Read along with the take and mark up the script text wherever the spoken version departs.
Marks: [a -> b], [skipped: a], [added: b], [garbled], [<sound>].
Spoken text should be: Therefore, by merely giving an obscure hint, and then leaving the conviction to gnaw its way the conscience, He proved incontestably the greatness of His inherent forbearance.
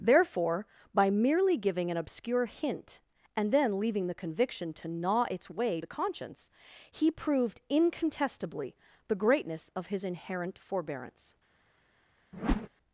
Therefore, by merely giving an obscure hint, and then leaving the conviction to gnaw its way the conscience, He proved incontestably the greatness of His inherent forbearance. [whoosh]